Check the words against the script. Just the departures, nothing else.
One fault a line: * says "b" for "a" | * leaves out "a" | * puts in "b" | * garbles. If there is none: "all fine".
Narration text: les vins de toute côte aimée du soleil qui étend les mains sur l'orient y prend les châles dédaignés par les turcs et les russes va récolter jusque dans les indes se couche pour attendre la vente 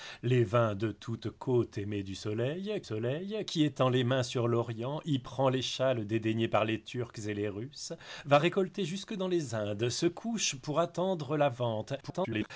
* puts in "soleil"
* garbles